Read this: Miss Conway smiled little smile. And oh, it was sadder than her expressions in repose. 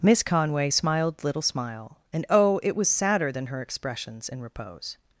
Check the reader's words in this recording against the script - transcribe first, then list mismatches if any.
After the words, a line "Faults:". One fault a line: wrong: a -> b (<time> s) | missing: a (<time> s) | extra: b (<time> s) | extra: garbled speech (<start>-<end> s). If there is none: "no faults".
Miss Conway smiled little smile. And oh, it was sadder than her expressions in repose.
Faults:
no faults